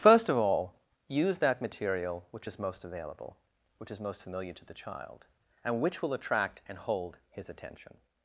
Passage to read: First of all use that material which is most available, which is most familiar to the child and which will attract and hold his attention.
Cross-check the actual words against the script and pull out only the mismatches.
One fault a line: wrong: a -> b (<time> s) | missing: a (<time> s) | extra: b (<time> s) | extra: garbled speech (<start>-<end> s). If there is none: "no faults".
no faults